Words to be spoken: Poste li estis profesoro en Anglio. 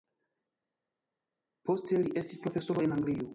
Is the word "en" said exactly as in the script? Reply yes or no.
yes